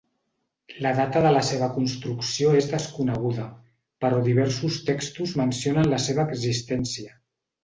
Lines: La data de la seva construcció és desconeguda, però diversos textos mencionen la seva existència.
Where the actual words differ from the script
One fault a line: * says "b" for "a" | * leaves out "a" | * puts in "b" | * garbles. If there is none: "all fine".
all fine